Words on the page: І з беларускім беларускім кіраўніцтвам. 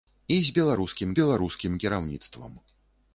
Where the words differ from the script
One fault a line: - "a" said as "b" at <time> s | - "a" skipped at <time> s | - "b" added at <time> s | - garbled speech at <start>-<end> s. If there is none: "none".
none